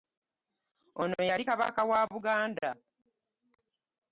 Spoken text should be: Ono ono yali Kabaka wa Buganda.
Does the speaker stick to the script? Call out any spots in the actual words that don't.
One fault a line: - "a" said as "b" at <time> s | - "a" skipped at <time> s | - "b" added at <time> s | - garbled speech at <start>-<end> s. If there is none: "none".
- "ono" skipped at 1.2 s